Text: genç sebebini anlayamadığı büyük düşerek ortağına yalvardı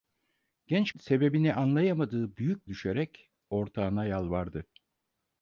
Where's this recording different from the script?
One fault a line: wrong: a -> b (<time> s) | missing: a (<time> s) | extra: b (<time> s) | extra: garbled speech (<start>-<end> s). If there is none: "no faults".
no faults